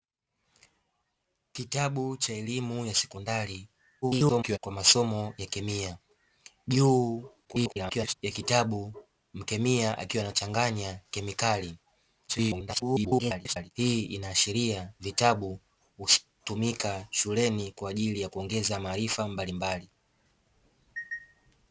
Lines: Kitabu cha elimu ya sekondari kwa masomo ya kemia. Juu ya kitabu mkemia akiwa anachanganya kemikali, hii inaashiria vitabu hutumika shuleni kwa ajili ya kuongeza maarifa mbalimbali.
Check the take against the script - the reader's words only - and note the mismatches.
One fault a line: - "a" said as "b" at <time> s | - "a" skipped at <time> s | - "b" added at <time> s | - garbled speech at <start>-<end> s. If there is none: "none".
- garbled speech at 4.0-4.6 s
- garbled speech at 7.4-8.2 s
- garbled speech at 12.3-13.7 s